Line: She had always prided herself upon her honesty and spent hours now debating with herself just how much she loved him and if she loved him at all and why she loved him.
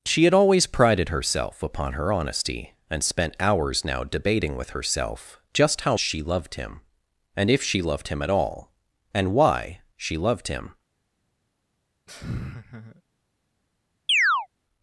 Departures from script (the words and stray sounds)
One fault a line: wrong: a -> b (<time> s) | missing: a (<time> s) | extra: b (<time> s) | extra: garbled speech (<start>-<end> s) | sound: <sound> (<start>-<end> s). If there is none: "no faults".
missing: much (6.0 s)
sound: laugh (12.1-13.0 s)
sound: chirp (14.1-14.5 s)